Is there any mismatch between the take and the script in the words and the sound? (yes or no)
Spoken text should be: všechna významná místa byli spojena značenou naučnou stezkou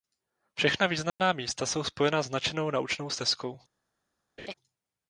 yes